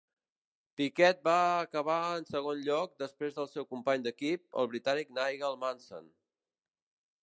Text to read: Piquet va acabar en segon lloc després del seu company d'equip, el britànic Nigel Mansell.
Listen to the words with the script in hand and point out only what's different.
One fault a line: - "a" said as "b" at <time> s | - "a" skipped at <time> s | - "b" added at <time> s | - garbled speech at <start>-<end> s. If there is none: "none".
none